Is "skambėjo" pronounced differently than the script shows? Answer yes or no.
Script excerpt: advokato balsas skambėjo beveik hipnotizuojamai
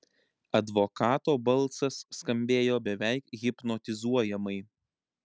no